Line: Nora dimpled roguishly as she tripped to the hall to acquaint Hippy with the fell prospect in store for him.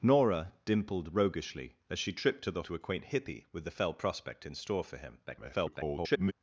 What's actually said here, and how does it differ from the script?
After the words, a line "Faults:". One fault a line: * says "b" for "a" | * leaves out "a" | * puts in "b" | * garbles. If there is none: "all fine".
Nora dimpled roguishly as she tripped to the to acquaint Hippy with the fell prospect in store for him. [garbled]
Faults:
* leaves out "hall"
* garbles